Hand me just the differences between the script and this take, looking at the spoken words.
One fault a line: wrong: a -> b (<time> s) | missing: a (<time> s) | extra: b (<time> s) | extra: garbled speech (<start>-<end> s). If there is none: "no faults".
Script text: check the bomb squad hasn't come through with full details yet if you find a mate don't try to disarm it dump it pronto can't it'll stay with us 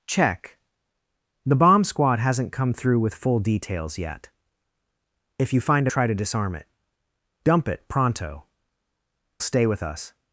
missing: mate don't (5.9 s)
missing: can't it'll (8.4 s)